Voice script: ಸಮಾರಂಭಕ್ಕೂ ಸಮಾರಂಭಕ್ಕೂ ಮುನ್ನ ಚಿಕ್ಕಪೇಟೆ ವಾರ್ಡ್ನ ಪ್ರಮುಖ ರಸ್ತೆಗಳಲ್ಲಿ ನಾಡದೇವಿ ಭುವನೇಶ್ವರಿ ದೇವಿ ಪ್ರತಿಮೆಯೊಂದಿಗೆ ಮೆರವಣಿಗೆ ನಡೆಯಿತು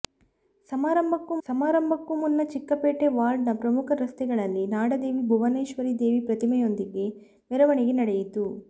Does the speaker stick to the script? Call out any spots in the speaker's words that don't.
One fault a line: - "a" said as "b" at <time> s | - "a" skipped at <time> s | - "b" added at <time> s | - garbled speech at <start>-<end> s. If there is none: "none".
none